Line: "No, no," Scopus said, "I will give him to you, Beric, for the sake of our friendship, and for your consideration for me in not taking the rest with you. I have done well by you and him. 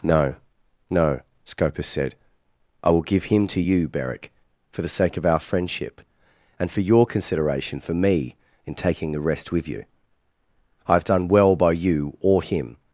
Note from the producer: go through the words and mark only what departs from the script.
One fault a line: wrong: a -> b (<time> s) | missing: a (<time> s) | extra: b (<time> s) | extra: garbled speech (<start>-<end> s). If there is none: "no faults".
missing: not (8.8 s)
wrong: and -> or (12.2 s)